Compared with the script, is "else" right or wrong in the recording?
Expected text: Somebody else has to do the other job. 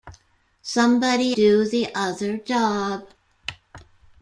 wrong